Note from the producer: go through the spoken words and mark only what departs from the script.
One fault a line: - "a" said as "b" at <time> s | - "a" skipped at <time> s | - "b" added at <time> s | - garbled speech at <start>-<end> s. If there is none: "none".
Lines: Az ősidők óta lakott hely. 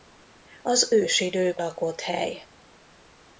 - "óta" skipped at 1.6 s